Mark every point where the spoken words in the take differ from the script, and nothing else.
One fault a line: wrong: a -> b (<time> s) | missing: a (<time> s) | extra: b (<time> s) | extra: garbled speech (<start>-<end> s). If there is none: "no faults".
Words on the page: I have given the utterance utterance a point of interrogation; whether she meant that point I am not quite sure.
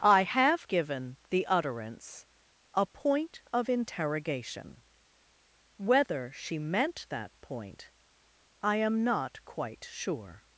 missing: utterance (2.2 s)